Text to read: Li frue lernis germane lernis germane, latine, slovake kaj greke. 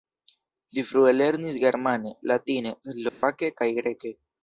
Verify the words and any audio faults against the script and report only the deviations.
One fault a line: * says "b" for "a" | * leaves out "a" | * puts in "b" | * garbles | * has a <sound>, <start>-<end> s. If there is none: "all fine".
* leaves out "lernis germane"
* has a dropout, 3.1-3.2 s